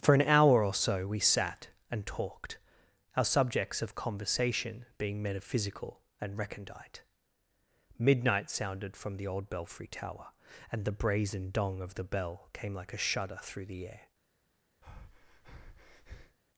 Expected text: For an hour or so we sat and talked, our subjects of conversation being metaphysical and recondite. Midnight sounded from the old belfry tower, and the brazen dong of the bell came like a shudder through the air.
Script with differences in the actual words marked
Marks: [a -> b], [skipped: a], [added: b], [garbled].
For an hour or so we sat and talked, our subjects of conversation being metaphysical and recondite. Midnight sounded from the old belfry tower, and the brazen dong of the bell came like a shudder through the air.